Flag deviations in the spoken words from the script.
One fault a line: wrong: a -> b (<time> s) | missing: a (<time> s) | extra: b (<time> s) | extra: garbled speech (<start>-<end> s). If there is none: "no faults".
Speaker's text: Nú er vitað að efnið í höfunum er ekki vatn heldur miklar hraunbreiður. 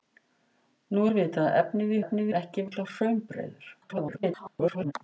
wrong: höfunum -> efnið (2.0 s)
missing: vatn heldur (2.7 s)
extra: garbled speech (3.8-4.9 s)